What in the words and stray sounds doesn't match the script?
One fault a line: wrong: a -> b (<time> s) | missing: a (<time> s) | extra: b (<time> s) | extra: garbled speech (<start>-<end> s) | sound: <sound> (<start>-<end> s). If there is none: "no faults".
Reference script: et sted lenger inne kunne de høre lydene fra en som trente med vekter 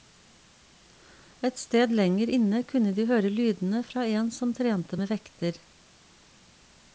no faults